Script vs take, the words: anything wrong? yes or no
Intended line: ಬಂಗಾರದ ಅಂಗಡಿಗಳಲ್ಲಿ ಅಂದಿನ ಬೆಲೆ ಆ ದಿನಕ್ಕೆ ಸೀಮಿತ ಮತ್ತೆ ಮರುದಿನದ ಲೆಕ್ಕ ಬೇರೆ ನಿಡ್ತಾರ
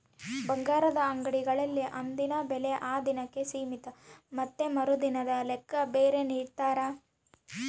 no